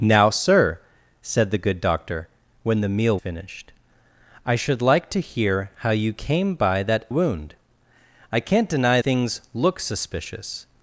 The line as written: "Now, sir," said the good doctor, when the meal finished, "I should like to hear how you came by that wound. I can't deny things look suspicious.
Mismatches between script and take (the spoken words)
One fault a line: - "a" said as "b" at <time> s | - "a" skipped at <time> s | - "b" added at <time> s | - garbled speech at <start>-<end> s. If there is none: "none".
none